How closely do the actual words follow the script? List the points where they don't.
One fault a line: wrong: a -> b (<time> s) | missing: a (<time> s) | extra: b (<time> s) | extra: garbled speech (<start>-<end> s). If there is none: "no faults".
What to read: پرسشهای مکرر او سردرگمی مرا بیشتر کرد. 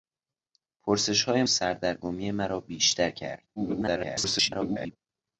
missing: مکرر او (1.4 s)
extra: garbled speech (3.6-5.0 s)